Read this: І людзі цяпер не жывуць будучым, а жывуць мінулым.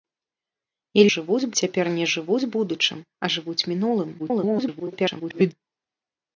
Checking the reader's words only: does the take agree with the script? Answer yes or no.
no